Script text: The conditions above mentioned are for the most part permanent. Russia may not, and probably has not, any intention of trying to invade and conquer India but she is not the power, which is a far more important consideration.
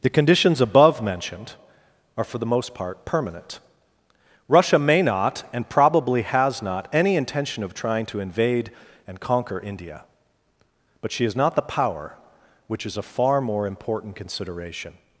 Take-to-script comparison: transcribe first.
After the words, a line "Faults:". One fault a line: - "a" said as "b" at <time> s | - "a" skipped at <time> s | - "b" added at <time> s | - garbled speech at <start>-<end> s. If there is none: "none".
The conditions above mentioned are for the most part permanent. Russia may not, and probably has not, any intention of trying to invade and conquer India but she is not the power, which is a far more important consideration.
Faults:
none